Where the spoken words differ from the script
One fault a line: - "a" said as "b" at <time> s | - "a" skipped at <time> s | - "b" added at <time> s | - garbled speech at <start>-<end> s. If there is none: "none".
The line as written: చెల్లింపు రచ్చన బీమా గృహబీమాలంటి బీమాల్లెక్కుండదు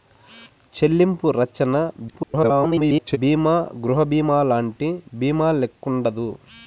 - garbled speech at 2.1-3.2 s